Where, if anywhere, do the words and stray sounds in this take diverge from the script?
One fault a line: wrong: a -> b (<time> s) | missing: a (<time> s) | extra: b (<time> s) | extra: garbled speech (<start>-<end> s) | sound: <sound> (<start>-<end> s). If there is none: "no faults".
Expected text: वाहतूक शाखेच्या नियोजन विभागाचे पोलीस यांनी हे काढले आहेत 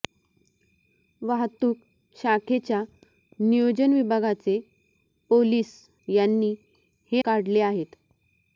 no faults